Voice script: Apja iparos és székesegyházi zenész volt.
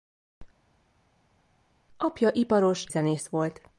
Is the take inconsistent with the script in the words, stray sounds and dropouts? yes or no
yes